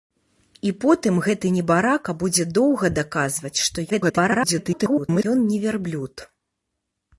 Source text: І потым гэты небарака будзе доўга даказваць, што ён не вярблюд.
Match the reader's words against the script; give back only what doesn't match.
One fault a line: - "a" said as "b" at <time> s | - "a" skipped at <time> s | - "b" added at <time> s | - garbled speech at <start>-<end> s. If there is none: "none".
- garbled speech at 3.9-5.2 s